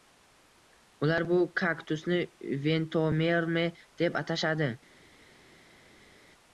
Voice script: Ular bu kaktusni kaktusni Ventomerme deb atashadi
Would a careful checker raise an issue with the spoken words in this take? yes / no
yes